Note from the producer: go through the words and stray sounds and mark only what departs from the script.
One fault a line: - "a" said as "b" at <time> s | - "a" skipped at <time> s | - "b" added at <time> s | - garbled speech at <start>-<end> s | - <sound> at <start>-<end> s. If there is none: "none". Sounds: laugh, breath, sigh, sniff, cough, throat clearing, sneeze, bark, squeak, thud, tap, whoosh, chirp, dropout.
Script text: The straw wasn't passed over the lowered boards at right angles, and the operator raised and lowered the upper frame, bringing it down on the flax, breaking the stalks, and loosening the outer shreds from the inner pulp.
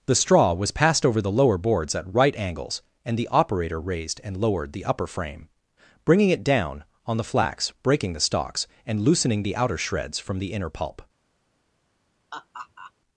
- "wasn't" said as "was" at 0.5 s
- "lowered" said as "lower" at 1.3 s
- laugh at 12.3-12.9 s